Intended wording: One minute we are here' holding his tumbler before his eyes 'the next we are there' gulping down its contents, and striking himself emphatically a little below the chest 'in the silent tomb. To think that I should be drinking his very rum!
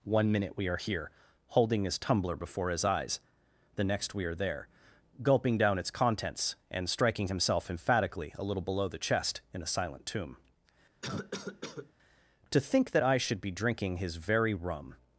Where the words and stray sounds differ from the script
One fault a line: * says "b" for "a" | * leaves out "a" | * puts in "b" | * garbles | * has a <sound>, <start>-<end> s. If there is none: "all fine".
* says "a" for "the"
* has a cough, 11.0-11.9 s